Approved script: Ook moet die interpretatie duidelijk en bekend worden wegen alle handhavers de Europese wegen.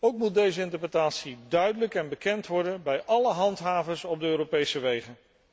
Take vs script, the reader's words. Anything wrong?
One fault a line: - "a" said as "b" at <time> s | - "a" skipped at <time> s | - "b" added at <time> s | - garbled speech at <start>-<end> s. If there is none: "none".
- "die" said as "deze" at 0.3 s
- "wegen" said as "bij" at 2.8 s
- "op" added at 4.0 s